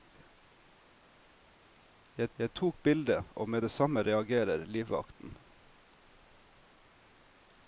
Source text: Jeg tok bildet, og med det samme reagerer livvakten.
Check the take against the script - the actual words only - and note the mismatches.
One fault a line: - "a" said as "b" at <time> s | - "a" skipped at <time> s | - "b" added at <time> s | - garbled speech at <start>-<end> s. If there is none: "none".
- "jeg" added at 2.4 s